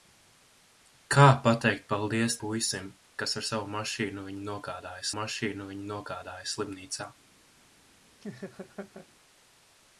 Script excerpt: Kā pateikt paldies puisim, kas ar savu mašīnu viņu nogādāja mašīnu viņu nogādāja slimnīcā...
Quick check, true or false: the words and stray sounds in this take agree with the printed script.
false